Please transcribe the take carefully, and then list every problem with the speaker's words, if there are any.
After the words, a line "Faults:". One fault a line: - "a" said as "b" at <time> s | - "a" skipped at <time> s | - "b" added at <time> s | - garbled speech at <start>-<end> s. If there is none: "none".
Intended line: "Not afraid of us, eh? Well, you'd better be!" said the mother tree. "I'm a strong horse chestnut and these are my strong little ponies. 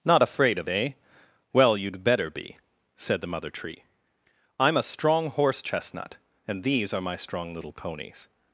"Not afraid of eh? Well, you'd better be!" said the mother tree. "I'm a strong horse chestnut and these are my strong little ponies.
Faults:
- "us" skipped at 0.7 s